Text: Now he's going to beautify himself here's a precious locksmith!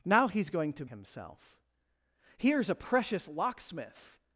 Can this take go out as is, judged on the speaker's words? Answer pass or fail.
fail